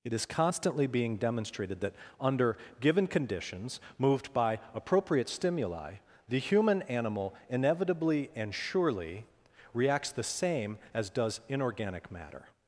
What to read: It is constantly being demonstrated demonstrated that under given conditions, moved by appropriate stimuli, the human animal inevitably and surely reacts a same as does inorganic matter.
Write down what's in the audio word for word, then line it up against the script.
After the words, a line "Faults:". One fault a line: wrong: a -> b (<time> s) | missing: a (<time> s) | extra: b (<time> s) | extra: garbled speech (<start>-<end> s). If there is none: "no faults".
It is constantly being demonstrated that under given conditions, moved by appropriate stimuli, the human animal inevitably and surely reacts the same as does inorganic matter.
Faults:
missing: demonstrated (1.8 s)
wrong: a -> the (10.1 s)